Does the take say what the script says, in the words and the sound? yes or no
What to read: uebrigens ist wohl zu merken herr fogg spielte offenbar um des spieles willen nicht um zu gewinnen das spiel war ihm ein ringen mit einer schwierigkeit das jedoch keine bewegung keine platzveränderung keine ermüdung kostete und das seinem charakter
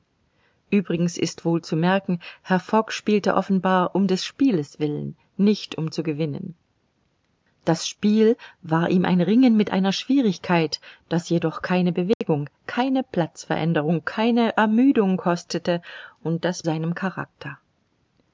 no